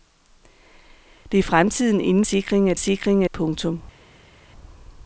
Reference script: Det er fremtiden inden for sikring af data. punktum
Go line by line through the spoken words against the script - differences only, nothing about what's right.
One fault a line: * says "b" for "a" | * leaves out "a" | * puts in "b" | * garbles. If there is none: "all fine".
* leaves out "for"
* says "sikring" for "data"